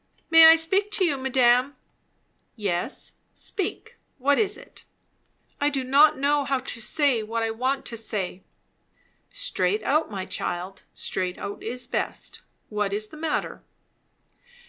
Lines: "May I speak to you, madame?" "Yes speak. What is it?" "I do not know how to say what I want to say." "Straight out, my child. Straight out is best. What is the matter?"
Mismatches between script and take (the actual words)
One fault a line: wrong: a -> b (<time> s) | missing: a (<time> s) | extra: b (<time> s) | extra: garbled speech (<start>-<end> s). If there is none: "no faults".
no faults